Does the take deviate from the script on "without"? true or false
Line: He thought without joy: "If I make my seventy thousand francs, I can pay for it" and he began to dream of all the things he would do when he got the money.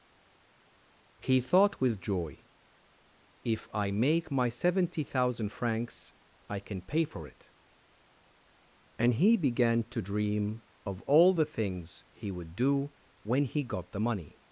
true